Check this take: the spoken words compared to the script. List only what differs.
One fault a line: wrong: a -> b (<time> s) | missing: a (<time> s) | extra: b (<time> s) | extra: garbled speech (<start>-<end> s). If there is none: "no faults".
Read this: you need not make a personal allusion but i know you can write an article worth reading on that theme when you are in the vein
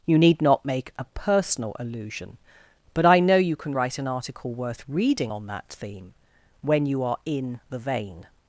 no faults